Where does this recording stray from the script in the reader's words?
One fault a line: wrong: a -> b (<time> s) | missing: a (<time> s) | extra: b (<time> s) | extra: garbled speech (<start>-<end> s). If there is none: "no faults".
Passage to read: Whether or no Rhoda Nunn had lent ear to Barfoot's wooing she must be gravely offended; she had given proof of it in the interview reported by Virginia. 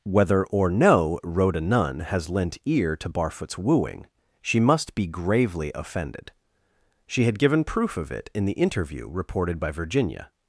wrong: had -> has (2.0 s)